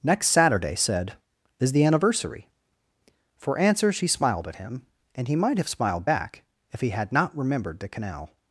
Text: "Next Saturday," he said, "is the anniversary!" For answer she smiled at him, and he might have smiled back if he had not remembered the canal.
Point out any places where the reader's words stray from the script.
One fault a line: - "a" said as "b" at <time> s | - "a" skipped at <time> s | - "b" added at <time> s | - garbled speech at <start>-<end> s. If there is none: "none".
- "he" skipped at 0.8 s